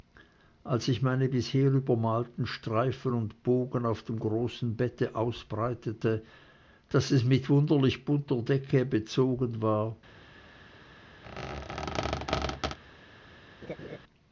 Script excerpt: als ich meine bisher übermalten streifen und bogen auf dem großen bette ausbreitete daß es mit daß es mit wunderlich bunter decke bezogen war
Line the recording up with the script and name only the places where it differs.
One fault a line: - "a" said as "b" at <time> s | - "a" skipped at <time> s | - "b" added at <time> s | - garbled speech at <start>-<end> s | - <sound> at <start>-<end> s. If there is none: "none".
- "daß es mit" skipped at 7.5 s
- squeak at 11.2-12.8 s
- laugh at 13.6-14.0 s